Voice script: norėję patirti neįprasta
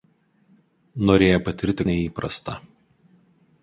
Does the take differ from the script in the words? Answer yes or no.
no